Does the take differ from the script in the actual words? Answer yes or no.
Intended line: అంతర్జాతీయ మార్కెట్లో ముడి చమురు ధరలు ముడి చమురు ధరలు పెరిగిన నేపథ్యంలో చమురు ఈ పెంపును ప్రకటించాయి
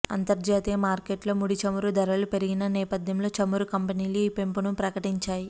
yes